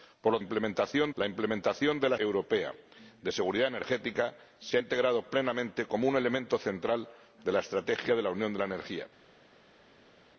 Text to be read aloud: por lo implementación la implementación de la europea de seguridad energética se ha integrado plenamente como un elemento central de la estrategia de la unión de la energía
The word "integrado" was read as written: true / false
true